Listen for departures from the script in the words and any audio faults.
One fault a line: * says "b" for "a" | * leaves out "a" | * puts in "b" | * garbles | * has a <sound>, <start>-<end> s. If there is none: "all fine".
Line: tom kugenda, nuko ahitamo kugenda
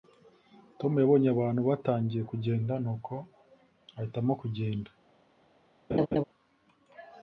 * puts in "yabonye abantu batangiye"
* has a laugh, 5.9-6.2 s